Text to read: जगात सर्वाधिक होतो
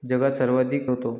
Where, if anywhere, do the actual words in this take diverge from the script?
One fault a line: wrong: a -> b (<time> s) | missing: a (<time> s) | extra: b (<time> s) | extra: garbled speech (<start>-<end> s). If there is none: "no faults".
no faults